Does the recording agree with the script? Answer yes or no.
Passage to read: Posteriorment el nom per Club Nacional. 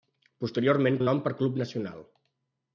yes